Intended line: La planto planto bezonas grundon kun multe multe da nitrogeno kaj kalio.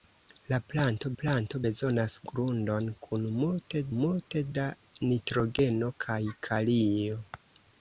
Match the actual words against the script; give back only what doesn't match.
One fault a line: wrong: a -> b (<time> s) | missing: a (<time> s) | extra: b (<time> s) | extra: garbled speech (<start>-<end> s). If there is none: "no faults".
no faults